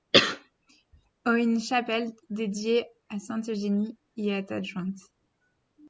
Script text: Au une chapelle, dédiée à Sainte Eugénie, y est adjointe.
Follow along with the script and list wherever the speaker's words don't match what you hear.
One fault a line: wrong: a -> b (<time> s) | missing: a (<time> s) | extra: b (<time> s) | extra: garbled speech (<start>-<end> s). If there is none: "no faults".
no faults